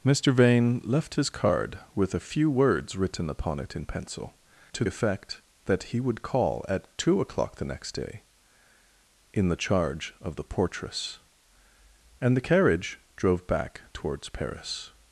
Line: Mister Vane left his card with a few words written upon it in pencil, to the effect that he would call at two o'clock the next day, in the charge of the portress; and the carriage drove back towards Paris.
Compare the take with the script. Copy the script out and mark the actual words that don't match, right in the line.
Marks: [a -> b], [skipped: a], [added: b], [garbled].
Mister Vane left his card with a few words written upon it in pencil, to [skipped: the] effect that he would call at two o'clock the next day, in the charge of the portress; and the carriage drove back towards Paris.